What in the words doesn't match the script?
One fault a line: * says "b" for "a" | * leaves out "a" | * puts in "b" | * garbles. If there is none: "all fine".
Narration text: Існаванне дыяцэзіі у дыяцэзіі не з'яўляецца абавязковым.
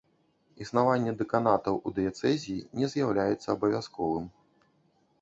* says "дэканатаў" for "дыяцэзіі"